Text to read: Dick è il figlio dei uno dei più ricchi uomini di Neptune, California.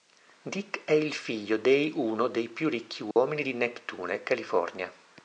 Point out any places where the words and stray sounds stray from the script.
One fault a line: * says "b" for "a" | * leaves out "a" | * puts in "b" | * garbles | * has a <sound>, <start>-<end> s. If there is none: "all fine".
* has a dropout, 3.1-3.2 s